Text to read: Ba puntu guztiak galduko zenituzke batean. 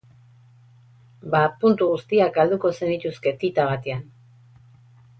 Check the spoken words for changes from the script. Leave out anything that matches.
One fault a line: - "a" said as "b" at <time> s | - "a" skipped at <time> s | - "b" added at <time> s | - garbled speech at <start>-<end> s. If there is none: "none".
- "tita" added at 3.5 s